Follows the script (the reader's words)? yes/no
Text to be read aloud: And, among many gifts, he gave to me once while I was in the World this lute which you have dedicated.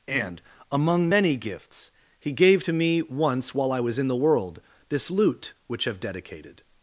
no